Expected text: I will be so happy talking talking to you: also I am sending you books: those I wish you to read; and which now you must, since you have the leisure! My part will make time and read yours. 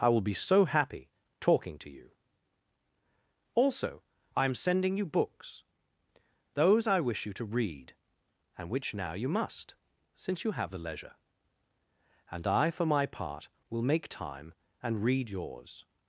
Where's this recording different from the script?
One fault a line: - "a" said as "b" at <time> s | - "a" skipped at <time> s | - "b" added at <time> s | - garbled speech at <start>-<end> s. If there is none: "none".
- "talking" skipped at 1.8 s
- "And I for" added at 12.3 s